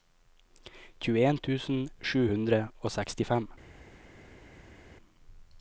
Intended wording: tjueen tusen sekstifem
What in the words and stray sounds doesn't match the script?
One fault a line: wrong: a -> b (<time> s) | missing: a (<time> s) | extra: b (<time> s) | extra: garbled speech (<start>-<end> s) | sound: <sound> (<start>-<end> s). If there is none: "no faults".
extra: sju hundre og (2.1 s)